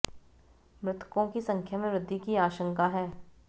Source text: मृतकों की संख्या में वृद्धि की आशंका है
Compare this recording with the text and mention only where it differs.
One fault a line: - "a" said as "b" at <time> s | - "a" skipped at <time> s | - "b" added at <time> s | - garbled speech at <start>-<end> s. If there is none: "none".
none